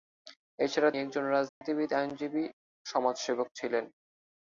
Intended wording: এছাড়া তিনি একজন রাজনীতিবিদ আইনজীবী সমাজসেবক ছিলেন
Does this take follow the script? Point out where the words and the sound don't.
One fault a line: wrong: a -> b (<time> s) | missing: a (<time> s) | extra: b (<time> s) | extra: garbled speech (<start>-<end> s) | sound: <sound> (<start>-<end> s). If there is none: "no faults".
missing: তিনি (0.9 s)
sound: dropout (1.5-1.6 s)